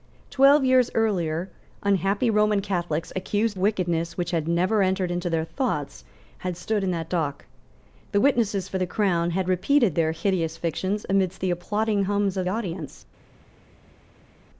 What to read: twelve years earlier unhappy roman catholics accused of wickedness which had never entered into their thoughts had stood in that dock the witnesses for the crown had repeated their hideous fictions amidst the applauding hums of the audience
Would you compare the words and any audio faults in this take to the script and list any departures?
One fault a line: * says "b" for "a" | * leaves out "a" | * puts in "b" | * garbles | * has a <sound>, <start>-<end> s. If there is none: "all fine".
* leaves out "of"
* leaves out "the"